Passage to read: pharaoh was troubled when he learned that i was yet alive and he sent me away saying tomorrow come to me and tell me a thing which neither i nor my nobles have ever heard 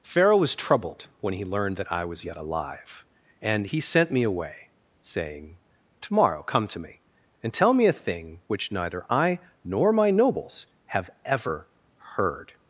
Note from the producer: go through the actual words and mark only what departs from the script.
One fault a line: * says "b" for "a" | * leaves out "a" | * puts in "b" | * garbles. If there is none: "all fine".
all fine